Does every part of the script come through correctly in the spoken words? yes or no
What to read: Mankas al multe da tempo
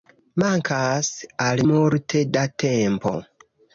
yes